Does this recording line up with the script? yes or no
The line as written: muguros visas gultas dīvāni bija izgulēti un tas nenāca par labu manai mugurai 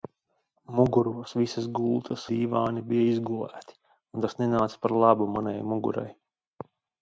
yes